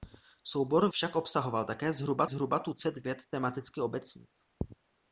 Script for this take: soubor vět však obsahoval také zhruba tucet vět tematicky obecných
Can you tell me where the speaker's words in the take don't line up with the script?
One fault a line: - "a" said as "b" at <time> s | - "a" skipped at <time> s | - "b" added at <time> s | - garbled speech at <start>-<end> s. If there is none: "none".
- "vět" skipped at 0.9 s
- "zhruba" added at 2.2 s